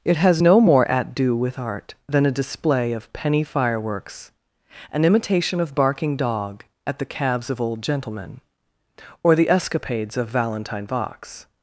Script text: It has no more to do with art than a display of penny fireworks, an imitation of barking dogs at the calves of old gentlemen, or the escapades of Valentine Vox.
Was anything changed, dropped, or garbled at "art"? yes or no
no